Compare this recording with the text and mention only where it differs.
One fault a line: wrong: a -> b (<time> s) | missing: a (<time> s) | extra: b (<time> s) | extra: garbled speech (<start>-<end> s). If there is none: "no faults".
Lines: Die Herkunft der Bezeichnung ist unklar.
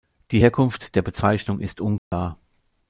no faults